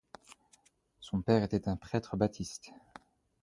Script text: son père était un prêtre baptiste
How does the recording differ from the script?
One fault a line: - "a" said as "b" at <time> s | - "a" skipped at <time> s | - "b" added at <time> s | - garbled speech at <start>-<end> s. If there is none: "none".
none